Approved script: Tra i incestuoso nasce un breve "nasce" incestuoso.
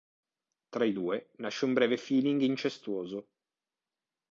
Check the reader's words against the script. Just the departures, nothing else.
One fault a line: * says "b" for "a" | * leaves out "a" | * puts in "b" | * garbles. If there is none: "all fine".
* says "due" for "incestuoso"
* says "feeling" for "nasce"